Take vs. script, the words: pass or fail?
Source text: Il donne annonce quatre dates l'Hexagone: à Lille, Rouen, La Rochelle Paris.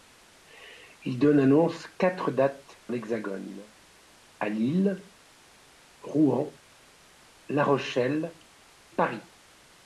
pass